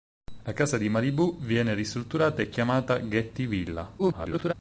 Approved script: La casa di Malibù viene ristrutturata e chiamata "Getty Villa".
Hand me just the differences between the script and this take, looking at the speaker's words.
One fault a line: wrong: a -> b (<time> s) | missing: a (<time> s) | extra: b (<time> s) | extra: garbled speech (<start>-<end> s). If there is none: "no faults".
extra: garbled speech (4.0-4.5 s)